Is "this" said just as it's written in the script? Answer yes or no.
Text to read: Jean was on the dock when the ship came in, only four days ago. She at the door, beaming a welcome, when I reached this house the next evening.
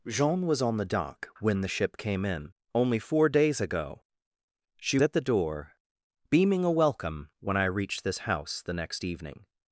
yes